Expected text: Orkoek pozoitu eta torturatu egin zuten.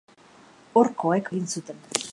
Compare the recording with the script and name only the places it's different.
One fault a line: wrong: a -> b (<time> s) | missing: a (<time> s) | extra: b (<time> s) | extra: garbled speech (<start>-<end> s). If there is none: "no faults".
missing: pozoitu eta torturatu (1.3 s)